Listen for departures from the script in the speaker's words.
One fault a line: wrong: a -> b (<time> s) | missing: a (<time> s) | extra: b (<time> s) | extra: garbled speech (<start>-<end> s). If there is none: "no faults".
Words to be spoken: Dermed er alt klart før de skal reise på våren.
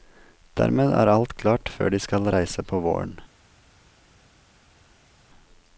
no faults